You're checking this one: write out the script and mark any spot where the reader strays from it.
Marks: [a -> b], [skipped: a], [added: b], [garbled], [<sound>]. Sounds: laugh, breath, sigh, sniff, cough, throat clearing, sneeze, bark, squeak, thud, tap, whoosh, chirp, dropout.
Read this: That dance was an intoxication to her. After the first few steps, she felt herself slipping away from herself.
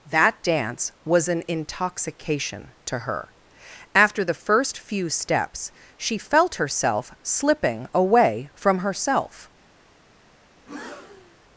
That dance was an intoxication to her. After the first few steps, she felt herself slipping away from herself. [breath]